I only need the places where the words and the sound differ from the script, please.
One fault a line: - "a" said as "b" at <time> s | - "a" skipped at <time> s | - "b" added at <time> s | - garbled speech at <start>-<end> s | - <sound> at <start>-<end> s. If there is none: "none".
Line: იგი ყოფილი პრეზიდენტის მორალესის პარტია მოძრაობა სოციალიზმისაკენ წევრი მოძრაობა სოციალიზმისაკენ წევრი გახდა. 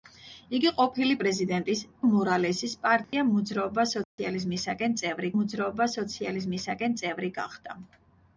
- dropout at 3.0-3.1 s
- dropout at 4.0-4.2 s